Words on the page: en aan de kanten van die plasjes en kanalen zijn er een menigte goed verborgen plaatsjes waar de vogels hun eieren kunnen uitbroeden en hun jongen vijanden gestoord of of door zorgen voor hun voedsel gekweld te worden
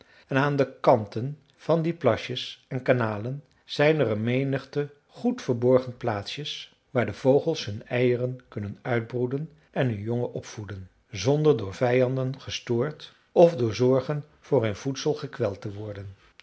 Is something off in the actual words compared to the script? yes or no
yes